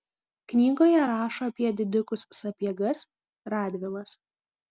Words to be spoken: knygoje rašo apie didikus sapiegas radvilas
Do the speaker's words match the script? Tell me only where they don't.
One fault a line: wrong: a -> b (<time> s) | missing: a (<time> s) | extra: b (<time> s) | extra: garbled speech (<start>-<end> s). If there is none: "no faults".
no faults